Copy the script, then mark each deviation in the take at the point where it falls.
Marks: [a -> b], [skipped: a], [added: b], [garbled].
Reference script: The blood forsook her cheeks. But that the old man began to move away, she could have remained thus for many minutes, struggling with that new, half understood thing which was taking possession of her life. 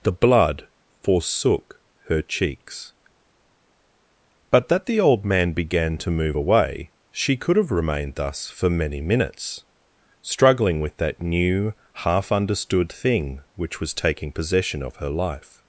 The blood forsook her cheeks. But that the old man began to move away, she could have remained thus for many minutes, struggling with that new, half understood thing which was taking possession of her life.